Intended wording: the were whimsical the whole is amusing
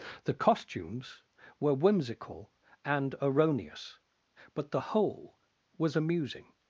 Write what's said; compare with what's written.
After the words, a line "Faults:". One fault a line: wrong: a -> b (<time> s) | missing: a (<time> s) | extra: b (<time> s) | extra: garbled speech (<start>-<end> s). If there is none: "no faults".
the costumes were whimsical and erroneous but the whole was amusing
Faults:
extra: costumes (0.3 s)
extra: and erroneous but (2.8 s)
wrong: is -> was (5.8 s)